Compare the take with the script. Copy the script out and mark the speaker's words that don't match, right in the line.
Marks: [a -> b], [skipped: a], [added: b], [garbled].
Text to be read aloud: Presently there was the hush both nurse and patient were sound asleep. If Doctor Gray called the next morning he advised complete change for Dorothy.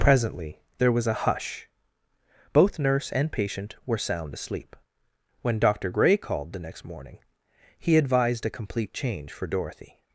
Presently there was [the -> a] hush both nurse and patient were sound asleep. [If -> When] Doctor Gray called the next morning he advised [added: a] complete change for Dorothy.